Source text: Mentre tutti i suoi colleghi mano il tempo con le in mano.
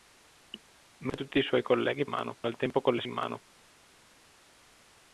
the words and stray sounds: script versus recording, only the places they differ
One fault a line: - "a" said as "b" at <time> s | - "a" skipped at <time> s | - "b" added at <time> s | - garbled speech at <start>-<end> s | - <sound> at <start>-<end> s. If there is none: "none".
none